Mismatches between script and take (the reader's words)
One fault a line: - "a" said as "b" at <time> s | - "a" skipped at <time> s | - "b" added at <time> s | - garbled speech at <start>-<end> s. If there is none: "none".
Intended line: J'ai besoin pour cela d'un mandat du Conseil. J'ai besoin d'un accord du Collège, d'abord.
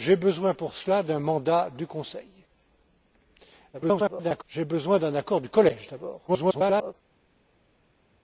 - garbled speech at 3.7-4.4 s
- garbled speech at 6.3-6.9 s